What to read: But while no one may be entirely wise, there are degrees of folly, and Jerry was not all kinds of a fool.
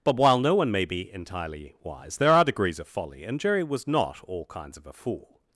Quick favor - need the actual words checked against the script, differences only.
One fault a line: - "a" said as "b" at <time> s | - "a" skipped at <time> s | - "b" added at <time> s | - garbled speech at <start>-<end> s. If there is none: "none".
none